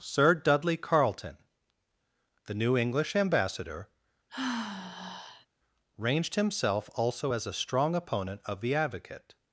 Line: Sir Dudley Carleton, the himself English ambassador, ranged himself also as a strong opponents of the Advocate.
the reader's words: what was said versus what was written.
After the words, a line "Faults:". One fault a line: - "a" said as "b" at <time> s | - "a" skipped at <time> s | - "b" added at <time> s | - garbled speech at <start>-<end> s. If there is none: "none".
Sir Dudley Carleton, the new English ambassador, ranged himself also as a strong opponent of the Advocate.
Faults:
- "himself" said as "new" at 2.5 s
- "opponents" said as "opponent" at 7.9 s